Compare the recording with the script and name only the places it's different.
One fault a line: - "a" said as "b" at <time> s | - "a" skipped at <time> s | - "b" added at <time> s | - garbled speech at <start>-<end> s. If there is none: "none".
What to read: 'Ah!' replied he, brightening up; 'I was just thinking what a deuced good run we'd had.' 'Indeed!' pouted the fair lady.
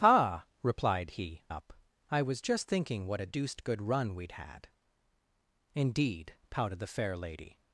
- "brightening" skipped at 1.4 s